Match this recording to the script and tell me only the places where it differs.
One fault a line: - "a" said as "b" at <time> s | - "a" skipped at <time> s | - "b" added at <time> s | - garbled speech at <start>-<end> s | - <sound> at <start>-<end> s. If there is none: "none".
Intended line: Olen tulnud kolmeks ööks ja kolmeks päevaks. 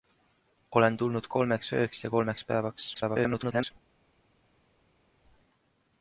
- garbled speech at 2.9-3.7 s